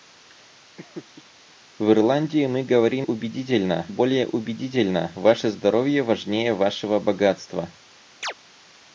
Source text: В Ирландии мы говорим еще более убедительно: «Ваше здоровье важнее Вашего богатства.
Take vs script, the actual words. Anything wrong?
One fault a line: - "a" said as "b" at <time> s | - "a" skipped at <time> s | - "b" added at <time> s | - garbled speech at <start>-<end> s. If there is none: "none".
- "еще" said as "убедительно" at 3.0 s